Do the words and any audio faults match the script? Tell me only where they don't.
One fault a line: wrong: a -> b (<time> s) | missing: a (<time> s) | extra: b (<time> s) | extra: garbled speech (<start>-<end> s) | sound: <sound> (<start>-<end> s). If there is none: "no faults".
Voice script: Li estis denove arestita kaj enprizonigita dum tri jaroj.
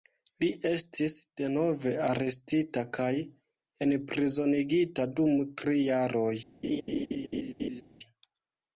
sound: laugh (6.6-7.8 s)